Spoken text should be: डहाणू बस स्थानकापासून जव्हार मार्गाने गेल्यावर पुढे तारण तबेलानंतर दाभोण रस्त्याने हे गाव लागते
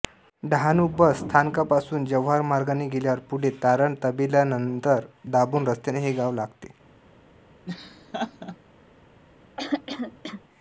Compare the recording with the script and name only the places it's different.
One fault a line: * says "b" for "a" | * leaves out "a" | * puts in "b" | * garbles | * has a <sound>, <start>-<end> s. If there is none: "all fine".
* has a laugh, 7.7-8.6 s
* has a throat clearing, 9.6-10.4 s